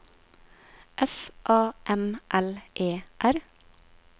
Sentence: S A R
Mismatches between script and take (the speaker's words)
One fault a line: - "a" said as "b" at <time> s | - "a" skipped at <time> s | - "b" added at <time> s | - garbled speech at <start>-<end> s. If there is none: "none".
- "M L E" added at 1.9 s